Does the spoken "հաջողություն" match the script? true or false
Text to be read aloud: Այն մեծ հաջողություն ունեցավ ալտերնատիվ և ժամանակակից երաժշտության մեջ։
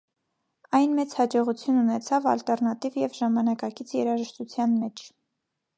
true